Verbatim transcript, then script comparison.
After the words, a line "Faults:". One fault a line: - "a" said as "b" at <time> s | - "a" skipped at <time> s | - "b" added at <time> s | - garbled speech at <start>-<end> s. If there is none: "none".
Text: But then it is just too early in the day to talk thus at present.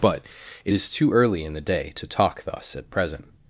But it is too early in the day to talk thus at present.
Faults:
- "then" skipped at 0.2 s
- "just" skipped at 0.9 s